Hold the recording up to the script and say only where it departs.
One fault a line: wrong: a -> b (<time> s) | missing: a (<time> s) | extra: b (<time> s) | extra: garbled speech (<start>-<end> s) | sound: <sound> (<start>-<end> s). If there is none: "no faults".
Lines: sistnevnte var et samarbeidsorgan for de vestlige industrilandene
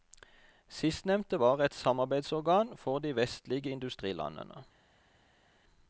no faults